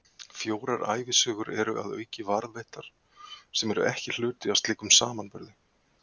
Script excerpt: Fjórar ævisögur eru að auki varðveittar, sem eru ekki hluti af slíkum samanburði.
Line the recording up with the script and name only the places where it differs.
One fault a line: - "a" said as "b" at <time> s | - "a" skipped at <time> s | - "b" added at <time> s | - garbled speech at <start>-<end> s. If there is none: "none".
none